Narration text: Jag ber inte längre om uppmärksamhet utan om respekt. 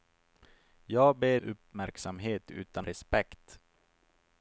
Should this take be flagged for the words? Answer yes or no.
yes